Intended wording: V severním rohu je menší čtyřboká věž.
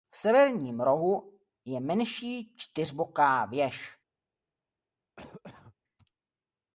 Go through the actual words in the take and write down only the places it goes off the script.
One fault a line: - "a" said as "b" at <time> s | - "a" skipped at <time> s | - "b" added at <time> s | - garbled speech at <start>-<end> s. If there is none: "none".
none